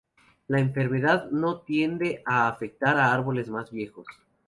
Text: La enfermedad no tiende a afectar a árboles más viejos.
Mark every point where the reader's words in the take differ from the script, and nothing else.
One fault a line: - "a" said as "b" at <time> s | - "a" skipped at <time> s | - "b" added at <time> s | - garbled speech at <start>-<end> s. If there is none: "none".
none